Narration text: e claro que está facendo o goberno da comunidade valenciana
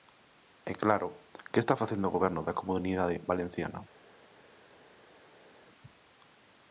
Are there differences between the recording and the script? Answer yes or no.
no